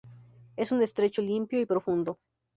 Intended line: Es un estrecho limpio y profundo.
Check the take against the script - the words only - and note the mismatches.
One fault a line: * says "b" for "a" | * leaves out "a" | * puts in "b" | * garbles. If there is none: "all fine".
all fine